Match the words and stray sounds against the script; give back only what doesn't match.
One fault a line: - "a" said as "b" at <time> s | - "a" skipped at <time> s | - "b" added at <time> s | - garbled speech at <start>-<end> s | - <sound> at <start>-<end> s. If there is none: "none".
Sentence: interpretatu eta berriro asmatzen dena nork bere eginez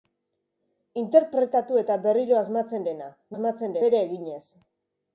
- "nork" said as "asmatzen" at 3.3 s